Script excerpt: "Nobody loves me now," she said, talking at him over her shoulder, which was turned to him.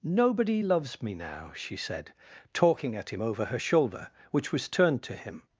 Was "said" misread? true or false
false